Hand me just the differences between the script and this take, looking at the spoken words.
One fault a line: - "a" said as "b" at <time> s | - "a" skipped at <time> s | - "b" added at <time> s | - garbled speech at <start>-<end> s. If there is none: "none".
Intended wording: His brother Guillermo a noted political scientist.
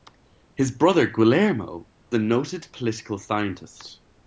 none